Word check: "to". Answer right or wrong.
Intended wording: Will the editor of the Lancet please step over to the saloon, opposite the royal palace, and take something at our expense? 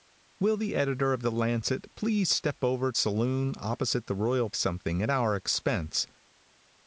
wrong